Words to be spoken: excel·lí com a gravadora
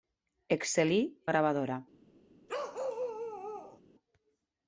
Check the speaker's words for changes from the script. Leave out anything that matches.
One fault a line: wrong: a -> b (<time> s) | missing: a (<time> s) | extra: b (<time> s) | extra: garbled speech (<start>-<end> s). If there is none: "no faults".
missing: com (1.0 s)